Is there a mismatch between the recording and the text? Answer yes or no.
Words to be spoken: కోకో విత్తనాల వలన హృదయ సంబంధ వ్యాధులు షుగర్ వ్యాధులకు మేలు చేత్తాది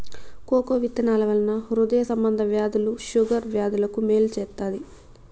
no